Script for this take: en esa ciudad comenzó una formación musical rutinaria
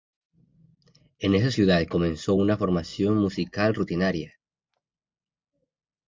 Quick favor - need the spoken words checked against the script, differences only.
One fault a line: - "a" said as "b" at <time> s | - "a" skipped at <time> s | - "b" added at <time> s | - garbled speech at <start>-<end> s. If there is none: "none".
none